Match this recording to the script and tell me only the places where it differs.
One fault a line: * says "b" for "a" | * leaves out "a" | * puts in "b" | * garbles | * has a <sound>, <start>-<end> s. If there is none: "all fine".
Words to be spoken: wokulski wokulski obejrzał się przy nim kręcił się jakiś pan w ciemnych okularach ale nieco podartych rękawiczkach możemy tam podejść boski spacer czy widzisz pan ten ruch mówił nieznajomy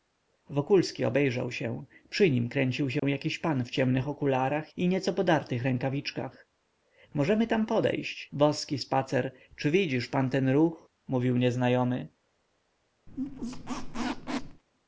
* leaves out "wokulski"
* has a dropout, 3.0-3.0 s
* says "i" for "ale"
* has a squeak, 13.1-14.6 s